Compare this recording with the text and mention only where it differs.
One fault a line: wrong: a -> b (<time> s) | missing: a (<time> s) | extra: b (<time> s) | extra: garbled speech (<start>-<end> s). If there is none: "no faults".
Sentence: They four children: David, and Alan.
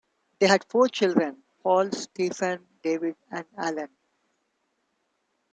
extra: had (0.5 s)
extra: Paul Stephen (1.6 s)